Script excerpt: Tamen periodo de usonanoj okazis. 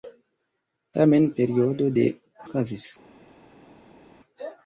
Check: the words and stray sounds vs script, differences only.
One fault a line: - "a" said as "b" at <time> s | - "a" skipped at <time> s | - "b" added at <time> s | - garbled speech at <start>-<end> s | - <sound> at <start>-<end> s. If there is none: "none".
- "usonanoj" skipped at 2.1 s